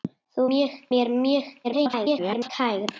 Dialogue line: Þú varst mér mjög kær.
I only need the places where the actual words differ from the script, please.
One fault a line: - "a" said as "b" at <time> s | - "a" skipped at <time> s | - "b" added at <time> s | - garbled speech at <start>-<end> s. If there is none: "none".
- "varst" said as "mjög" at 0.5 s
- garbled speech at 1.6-2.5 s